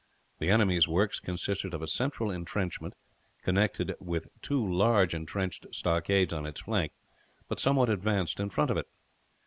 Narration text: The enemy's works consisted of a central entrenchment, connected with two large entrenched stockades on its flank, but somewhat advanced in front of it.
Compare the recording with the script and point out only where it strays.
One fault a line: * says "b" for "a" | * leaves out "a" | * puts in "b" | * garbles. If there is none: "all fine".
all fine